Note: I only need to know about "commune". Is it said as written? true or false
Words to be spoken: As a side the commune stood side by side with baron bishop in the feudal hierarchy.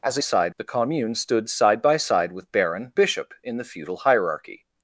true